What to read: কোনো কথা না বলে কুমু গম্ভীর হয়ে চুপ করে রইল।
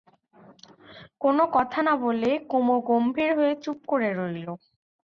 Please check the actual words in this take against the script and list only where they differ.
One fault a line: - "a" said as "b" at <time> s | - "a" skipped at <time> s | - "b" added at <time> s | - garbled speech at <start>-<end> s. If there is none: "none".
none